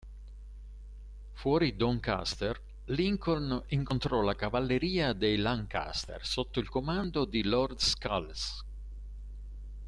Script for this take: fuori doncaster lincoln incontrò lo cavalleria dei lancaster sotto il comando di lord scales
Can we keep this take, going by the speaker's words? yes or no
no